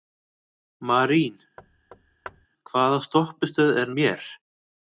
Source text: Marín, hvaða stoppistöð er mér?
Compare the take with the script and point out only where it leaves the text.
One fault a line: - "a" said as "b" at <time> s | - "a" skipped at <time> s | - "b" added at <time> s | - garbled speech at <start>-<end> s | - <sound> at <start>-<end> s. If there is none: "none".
- thud at 1.6-2.5 s